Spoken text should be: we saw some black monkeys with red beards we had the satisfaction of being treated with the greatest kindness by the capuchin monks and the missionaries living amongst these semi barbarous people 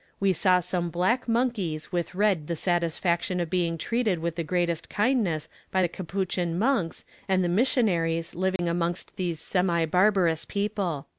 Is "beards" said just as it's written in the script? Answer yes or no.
no